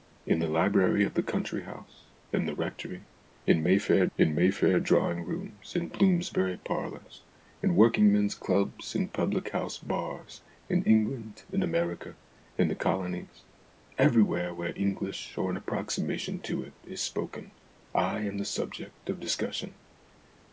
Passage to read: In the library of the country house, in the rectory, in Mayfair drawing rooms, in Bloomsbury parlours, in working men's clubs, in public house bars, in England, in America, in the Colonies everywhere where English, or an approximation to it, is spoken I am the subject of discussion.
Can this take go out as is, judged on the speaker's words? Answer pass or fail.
fail